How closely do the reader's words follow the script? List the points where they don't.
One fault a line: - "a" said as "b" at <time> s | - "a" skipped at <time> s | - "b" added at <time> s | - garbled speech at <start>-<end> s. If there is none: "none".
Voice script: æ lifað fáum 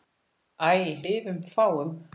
none